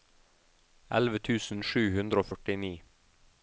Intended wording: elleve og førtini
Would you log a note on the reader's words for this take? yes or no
yes